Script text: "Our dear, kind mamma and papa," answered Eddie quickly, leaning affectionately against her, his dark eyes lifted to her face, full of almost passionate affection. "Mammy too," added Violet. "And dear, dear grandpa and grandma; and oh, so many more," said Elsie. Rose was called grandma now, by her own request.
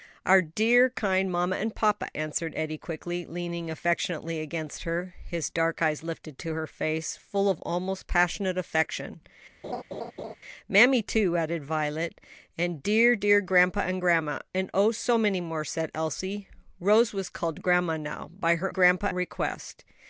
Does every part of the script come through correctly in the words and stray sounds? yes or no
no